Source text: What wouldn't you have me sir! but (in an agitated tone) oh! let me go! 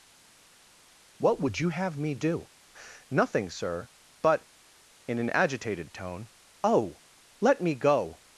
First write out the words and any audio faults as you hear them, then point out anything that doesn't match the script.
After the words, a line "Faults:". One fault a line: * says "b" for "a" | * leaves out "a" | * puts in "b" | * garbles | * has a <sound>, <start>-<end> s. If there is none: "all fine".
What would you have me do?" "Nothing, sir! but (in an agitated tone) oh! let me go!
Faults:
* says "would" for "wouldn't"
* puts in "do Nothing"